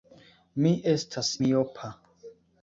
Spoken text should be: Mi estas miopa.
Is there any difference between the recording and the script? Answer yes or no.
no